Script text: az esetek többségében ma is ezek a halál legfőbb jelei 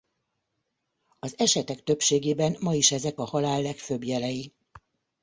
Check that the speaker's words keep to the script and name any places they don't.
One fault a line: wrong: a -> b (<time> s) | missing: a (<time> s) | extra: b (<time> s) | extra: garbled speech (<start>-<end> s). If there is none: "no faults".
no faults